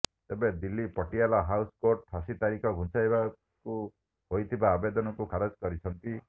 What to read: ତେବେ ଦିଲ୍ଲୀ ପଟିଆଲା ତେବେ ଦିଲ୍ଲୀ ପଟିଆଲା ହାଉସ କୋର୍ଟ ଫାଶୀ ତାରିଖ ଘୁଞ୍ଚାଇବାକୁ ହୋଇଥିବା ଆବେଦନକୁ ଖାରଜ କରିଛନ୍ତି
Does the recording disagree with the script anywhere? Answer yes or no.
yes